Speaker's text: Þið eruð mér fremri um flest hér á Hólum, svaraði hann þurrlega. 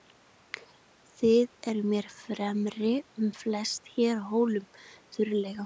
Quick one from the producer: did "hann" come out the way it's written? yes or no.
no